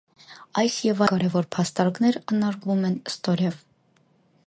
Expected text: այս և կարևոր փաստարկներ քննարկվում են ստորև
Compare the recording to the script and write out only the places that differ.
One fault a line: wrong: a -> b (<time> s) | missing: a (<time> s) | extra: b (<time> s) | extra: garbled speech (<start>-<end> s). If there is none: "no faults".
no faults